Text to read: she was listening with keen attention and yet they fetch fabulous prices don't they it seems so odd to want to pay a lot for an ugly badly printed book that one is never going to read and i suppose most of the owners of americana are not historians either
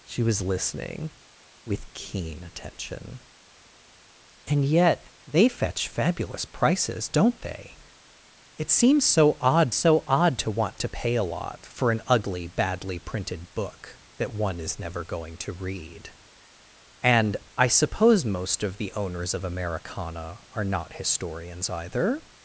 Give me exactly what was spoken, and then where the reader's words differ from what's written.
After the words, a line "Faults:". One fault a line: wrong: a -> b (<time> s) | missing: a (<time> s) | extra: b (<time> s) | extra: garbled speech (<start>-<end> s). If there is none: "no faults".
she was listening with keen attention and yet they fetch fabulous prices don't they it seems so odd so odd to want to pay a lot for an ugly badly printed book that one is never going to read and i suppose most of the owners of americana are not historians either
Faults:
extra: so odd (9.7 s)